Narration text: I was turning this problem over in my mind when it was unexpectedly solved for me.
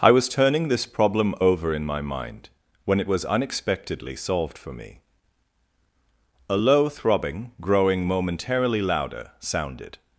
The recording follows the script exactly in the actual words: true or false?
false